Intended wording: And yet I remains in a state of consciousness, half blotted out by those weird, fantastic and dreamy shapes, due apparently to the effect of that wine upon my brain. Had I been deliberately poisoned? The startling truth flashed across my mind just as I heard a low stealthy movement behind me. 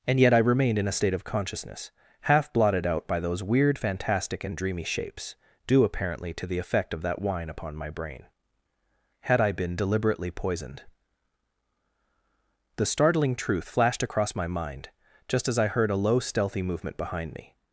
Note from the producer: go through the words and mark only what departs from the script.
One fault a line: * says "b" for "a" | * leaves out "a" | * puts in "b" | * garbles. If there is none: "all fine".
* says "remained" for "remains"